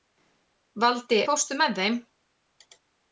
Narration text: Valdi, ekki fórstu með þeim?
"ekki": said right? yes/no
no